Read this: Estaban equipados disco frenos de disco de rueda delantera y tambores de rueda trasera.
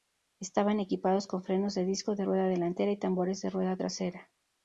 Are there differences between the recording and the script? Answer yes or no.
yes